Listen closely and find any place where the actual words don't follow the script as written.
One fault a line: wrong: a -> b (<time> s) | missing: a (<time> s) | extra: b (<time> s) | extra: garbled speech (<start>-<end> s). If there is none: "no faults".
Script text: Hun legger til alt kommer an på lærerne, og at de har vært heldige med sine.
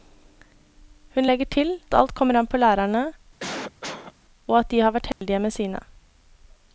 no faults